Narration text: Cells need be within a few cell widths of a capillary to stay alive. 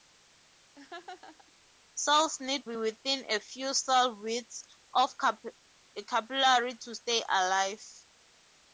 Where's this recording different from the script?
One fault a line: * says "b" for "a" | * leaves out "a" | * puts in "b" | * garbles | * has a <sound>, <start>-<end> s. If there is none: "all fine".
* has a laugh, 0.8-1.5 s